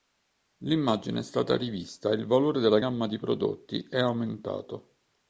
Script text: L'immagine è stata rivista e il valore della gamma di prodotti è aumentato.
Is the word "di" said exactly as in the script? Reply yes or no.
yes